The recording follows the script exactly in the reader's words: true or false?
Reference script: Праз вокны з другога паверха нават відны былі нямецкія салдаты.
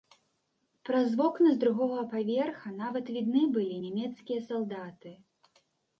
true